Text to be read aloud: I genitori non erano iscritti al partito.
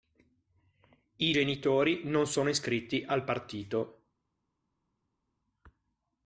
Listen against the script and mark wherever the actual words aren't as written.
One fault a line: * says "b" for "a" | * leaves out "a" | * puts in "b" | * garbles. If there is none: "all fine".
* says "sono" for "erano"